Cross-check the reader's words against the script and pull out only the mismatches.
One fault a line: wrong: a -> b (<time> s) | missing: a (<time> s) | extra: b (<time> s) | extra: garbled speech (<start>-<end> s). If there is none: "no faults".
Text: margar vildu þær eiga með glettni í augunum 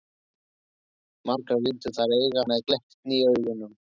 no faults